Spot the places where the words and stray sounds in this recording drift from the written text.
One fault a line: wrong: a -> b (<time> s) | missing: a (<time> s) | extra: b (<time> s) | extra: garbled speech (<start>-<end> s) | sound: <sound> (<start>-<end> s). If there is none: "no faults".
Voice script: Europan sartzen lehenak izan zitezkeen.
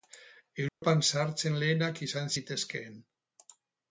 sound: dropout (0.7-0.8 s)